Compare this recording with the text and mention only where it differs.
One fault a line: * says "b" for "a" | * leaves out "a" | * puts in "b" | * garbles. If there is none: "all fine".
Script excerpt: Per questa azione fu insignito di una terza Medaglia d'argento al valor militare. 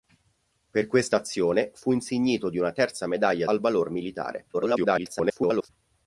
* leaves out "d'argento"
* garbles